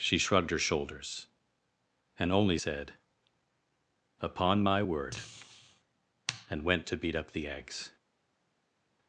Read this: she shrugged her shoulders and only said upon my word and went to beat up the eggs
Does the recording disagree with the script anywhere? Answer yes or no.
no